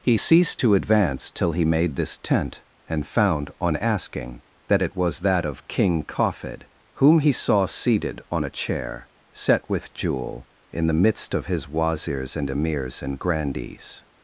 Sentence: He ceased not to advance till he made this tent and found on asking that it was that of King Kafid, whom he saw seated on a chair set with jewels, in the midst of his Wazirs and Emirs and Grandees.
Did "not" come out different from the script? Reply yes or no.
yes